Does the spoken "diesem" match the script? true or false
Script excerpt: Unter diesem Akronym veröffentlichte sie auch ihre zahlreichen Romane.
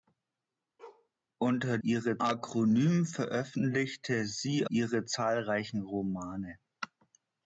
false